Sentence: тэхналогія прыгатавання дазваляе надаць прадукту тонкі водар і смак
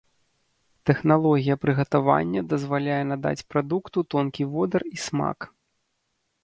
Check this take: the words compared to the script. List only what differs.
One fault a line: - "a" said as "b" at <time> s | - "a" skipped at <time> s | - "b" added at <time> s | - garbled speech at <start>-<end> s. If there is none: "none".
none